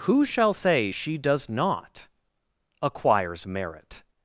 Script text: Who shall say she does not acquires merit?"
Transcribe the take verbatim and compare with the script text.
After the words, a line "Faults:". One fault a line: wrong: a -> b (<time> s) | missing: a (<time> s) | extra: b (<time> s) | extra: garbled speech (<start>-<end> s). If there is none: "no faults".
Who shall say she does not acquires merit?"
Faults:
no faults